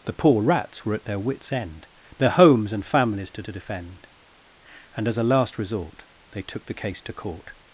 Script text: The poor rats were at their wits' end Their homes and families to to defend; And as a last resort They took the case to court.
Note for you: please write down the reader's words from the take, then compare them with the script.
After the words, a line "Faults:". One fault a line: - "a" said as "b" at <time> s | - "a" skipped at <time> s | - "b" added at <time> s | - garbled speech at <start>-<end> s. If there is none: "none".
The poor rats were at their wits' end Their homes and families to to defend; And as a last resort They took the case to court.
Faults:
none